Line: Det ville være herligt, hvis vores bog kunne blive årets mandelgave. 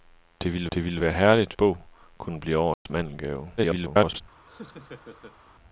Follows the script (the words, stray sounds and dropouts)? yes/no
no